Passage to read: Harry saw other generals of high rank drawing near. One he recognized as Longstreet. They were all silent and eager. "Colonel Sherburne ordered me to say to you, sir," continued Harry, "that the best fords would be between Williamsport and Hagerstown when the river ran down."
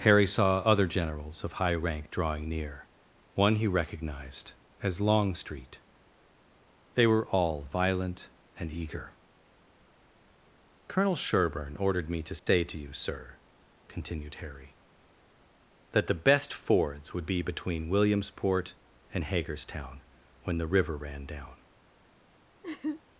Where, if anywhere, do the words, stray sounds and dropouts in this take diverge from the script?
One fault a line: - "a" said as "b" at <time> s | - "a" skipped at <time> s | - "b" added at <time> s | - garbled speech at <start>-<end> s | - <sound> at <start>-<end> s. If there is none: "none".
- "silent" said as "violent" at 7.6 s
- dropout at 12.4-12.5 s
- laugh at 22.6-23.0 s